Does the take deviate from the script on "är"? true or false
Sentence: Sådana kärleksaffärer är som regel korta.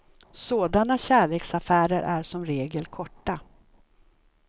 false